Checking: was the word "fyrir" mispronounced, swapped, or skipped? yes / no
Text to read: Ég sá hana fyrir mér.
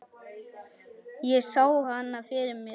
no